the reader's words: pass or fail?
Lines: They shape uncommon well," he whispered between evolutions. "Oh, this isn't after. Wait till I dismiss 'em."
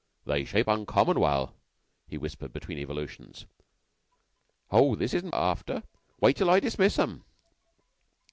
pass